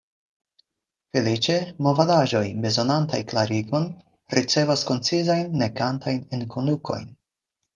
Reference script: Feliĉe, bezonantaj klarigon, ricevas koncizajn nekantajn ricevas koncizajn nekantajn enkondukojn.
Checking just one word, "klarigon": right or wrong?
right